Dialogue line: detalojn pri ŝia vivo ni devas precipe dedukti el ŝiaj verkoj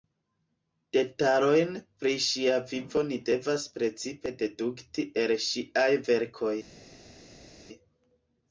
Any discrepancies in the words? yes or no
no